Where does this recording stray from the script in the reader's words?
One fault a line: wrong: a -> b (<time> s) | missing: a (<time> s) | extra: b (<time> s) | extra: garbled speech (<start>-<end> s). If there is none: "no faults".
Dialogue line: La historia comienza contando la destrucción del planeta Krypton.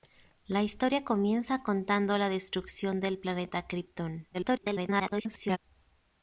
extra: garbled speech (4.3-5.6 s)